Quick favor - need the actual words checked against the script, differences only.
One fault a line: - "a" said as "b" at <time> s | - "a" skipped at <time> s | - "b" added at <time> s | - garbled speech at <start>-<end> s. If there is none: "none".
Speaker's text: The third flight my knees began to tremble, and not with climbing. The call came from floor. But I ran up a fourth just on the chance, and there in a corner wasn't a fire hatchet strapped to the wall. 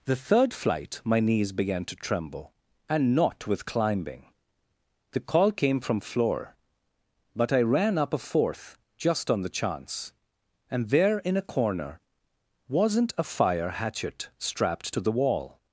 none